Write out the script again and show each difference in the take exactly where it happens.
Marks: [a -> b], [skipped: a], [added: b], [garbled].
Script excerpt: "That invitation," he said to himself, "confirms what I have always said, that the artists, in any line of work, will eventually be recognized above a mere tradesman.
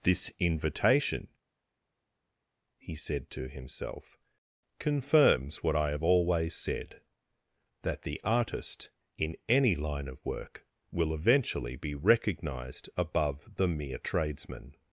["That -> This] invitation," he said to himself, "confirms what I have always said, that the [artists, -> artist] in any line of work, will eventually be recognized above [a -> the] mere tradesman.